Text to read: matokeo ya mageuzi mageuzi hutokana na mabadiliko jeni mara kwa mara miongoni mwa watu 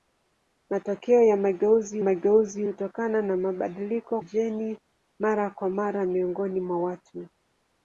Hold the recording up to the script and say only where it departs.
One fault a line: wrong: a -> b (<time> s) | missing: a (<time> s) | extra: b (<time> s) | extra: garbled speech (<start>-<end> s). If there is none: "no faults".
no faults